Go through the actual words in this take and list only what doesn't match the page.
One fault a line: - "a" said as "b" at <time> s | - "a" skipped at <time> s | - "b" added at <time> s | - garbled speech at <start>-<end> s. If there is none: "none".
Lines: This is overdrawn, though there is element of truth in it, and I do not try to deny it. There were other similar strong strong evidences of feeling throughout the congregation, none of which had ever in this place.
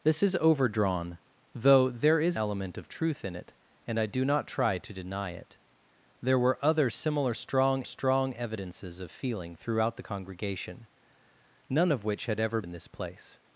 none